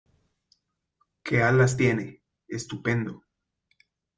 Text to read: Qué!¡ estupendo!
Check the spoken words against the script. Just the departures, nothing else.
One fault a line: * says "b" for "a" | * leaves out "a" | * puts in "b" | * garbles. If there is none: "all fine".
* puts in "alas tiene"